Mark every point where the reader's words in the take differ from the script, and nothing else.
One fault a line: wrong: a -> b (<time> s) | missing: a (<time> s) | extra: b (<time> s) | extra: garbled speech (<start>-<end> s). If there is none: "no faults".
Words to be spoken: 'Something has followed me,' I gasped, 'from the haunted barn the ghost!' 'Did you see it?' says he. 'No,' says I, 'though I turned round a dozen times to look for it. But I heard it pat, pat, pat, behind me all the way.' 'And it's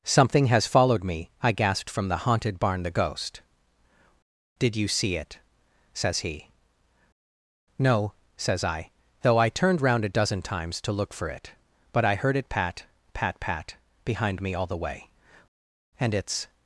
no faults